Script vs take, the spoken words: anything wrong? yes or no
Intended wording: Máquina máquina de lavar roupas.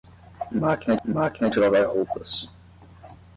no